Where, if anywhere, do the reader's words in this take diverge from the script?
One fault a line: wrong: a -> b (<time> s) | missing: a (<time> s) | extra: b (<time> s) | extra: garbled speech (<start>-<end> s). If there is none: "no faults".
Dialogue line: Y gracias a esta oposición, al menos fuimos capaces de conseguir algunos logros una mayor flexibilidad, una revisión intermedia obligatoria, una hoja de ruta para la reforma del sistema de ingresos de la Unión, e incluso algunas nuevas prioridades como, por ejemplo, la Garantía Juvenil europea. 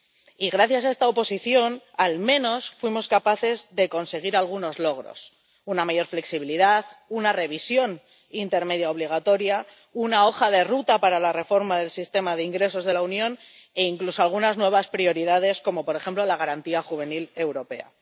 no faults